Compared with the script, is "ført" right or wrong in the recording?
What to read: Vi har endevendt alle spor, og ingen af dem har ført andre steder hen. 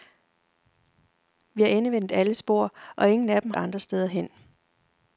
wrong